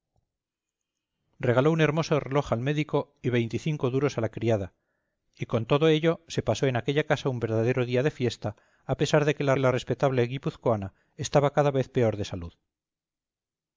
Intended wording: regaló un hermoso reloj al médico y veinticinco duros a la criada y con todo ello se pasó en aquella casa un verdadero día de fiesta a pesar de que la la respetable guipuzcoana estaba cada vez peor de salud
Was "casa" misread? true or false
false